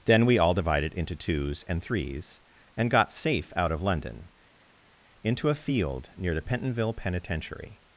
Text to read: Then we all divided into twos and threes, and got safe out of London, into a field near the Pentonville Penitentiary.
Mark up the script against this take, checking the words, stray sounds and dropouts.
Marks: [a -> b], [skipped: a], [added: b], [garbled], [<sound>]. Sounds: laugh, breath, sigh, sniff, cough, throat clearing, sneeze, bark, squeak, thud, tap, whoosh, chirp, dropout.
Then we all divided into twos and threes, and got safe out of London, into a field near the Pentonville Penitentiary.